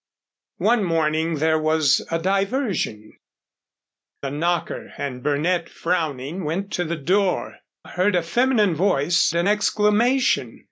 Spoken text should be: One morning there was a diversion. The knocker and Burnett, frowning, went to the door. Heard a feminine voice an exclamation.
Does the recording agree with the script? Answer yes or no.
yes